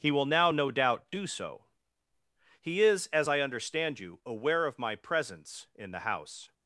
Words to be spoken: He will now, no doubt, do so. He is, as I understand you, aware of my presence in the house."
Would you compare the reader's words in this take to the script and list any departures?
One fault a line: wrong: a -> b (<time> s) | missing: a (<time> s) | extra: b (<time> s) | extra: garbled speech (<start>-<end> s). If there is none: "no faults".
no faults